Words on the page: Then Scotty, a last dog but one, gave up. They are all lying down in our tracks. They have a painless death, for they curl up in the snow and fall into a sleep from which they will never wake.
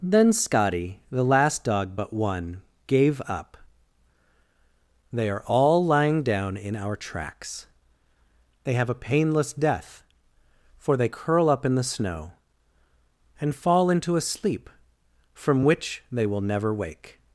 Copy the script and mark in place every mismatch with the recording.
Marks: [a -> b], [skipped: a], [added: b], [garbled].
Then Scotty, [a -> the] last dog but one, gave up. They are all lying down in our tracks. They have a painless death, for they curl up in the snow and fall into a sleep from which they will never wake.